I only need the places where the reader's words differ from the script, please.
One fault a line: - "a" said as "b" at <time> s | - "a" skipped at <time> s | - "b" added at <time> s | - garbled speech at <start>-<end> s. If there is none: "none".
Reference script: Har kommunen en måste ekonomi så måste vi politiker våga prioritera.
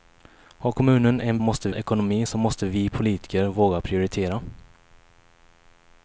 none